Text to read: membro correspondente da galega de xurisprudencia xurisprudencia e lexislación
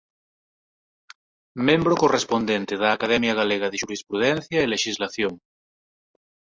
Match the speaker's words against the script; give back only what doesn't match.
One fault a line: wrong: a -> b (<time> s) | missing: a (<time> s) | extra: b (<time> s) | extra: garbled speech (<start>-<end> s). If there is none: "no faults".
extra: academia (3.0 s)
missing: xurisprudencia (4.6 s)